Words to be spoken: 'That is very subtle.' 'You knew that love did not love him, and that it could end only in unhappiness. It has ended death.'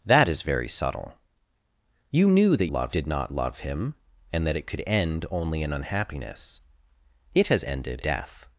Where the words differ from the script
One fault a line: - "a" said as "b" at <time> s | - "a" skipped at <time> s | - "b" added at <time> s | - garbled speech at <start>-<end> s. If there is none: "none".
none